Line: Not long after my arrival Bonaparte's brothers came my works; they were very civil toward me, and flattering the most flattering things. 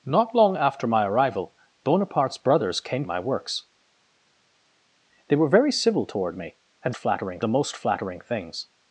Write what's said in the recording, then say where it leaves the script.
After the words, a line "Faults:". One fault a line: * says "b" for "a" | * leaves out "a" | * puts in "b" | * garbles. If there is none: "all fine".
Not long after my arrival Bonaparte's brothers came my works; they were very civil toward me, and flattering the most flattering things.
Faults:
all fine